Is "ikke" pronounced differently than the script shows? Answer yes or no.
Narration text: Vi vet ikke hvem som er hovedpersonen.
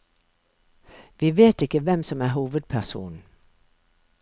no